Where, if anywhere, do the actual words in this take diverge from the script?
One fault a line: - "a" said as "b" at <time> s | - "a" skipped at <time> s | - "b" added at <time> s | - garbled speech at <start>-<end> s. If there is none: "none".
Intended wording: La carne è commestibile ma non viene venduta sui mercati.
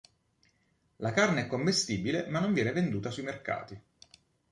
none